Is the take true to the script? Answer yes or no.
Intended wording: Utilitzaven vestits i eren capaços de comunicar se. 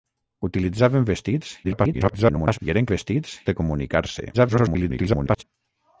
no